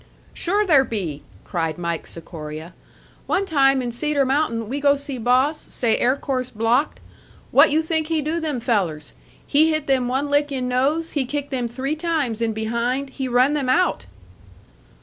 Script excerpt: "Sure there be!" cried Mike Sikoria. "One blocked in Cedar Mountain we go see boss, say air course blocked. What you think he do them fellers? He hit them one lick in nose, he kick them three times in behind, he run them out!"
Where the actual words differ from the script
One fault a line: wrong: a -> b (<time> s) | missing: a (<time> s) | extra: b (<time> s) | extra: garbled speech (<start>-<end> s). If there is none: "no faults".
wrong: blocked -> time (3.5 s)